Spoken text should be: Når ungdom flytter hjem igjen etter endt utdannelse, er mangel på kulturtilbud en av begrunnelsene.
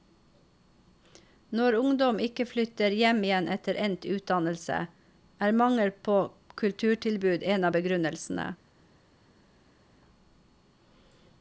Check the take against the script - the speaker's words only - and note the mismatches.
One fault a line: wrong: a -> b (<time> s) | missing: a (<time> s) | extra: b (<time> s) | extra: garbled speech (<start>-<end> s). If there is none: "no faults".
extra: ikke (2.3 s)